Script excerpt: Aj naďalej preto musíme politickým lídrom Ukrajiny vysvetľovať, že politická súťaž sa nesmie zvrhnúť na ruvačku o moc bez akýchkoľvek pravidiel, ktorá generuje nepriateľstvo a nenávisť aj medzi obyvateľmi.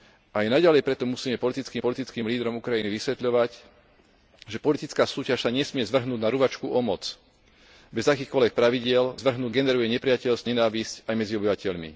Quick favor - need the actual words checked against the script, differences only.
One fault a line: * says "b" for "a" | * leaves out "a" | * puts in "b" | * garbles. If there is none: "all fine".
* puts in "politickým"
* says "zvrhnúť" for "ktorá"
* leaves out "a"